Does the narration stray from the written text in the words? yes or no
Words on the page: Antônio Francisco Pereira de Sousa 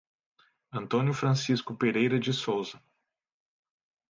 no